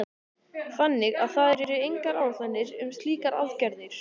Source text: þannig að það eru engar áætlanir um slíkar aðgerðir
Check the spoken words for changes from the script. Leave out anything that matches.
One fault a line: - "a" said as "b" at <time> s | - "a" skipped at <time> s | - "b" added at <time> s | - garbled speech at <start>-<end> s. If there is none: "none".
none